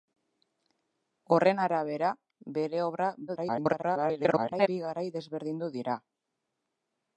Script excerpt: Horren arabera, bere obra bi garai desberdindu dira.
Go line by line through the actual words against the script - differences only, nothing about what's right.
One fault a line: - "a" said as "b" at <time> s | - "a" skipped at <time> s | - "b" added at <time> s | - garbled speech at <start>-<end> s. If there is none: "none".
- garbled speech at 3.3-4.7 s